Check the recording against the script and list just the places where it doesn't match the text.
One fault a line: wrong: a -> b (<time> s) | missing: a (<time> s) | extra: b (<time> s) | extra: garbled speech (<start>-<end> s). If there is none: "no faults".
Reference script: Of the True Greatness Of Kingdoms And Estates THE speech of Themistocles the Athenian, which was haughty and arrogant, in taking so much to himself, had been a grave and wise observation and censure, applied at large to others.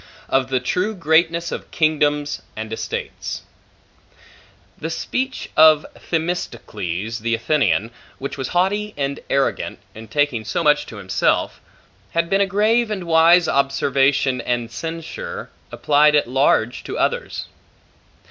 no faults